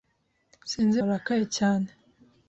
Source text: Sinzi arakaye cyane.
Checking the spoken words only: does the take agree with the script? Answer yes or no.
yes